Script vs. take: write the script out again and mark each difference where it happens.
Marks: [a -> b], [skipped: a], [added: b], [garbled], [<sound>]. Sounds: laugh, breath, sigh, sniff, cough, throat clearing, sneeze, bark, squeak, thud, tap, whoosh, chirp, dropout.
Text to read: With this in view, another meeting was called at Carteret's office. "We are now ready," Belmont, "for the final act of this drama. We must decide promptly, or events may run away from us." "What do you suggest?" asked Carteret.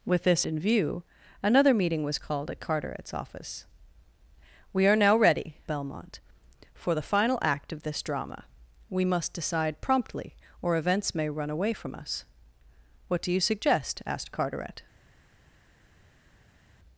With this in view, another meeting was called at Carteret's office. "We are now ready," Belmont, "for the final act of this drama. We must decide promptly, or events may run away from us." "What do you suggest?" asked Carteret.